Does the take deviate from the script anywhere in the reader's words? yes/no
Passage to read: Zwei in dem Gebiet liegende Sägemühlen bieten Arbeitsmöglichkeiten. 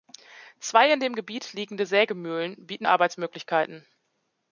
no